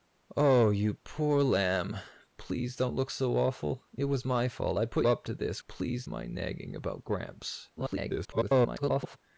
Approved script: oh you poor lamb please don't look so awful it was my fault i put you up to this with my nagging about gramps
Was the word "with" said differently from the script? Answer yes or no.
yes